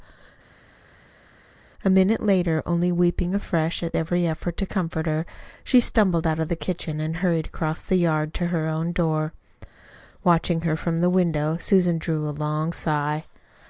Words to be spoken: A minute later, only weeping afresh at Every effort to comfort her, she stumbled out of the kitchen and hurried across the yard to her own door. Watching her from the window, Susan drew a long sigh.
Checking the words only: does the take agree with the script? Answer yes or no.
yes